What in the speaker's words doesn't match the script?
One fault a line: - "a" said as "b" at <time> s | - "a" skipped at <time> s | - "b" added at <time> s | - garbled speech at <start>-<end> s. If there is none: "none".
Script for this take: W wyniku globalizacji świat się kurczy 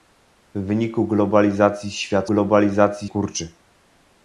- "się" said as "globalizacji" at 2.3 s